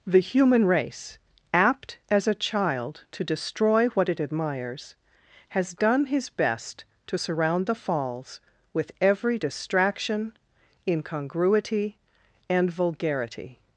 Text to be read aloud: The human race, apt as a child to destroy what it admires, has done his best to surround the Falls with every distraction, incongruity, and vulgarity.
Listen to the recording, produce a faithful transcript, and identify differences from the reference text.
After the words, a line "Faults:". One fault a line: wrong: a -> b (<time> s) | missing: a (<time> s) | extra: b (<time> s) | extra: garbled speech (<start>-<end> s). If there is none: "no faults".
The human race, apt as a child to destroy what it admires, has done his best to surround the Falls with every distraction, incongruity, and vulgarity.
Faults:
no faults